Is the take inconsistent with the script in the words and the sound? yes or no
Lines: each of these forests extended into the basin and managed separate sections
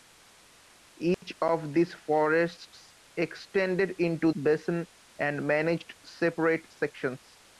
yes